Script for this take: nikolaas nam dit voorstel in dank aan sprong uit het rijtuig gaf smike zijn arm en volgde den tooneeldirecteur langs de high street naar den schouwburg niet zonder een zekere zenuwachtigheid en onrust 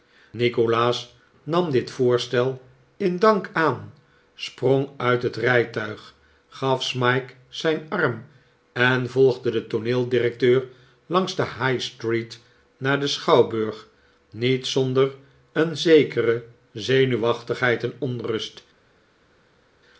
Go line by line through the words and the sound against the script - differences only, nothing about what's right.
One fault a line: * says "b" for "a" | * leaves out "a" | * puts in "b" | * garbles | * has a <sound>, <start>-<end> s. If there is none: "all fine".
all fine